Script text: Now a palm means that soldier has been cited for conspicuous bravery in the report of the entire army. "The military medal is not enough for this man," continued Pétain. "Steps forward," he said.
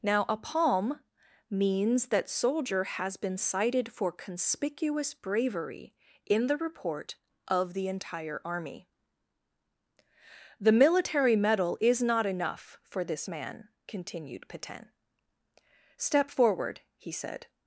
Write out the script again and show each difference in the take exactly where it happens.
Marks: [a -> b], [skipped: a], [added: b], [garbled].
Now a palm means that soldier has been cited for conspicuous bravery in the report of the entire army. "The military medal is not enough for this man," continued Pétain. ["Steps -> Step] forward," he said.